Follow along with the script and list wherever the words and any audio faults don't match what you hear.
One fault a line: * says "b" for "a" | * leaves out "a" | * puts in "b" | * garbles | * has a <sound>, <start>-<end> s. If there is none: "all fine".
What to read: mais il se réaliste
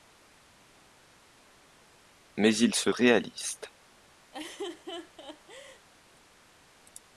* has a laugh, 4.3-5.9 s